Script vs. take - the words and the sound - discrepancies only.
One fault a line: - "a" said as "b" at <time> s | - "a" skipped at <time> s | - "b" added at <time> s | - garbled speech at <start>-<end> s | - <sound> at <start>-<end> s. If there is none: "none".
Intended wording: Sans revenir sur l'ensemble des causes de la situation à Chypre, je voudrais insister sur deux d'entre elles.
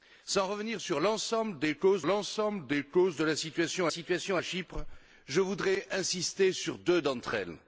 - "l'ensemble des causes" added at 2.0 s
- "situation" added at 3.9 s